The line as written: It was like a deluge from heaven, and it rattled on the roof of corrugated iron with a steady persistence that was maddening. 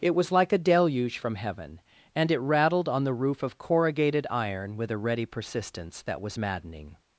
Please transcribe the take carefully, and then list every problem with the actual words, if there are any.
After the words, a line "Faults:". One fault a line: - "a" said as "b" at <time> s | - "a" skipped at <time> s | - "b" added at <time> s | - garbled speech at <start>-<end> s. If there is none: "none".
It was like a deluge from heaven, and it rattled on the roof of corrugated iron with a ready persistence that was maddening.
Faults:
- "steady" said as "ready" at 5.0 s